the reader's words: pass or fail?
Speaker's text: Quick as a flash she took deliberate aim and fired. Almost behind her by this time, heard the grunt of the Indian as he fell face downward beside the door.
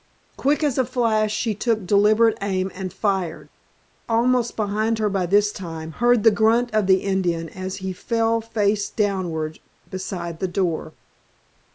pass